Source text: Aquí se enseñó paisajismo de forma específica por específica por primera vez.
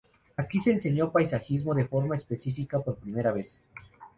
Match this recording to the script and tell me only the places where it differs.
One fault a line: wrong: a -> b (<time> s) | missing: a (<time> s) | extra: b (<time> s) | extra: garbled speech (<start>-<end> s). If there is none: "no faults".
missing: específica por (3.0 s)